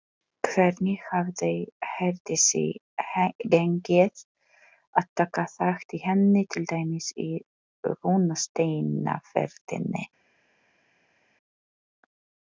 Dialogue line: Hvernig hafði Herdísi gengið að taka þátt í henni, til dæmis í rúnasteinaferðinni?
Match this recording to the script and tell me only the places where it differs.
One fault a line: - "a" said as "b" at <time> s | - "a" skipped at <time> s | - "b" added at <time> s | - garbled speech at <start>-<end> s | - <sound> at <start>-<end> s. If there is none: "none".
none